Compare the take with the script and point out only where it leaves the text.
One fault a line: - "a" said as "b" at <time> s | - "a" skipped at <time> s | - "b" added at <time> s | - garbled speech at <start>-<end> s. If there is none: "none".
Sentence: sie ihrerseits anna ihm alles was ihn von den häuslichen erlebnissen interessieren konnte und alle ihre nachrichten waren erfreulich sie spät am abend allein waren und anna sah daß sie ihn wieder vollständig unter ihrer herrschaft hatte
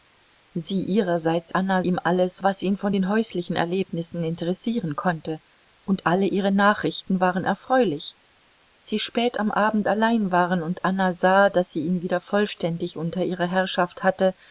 none